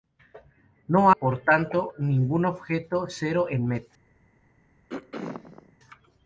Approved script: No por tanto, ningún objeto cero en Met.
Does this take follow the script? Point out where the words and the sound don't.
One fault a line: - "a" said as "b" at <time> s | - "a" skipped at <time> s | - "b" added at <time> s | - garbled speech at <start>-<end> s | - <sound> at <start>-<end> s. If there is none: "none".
- throat clearing at 4.9-5.8 s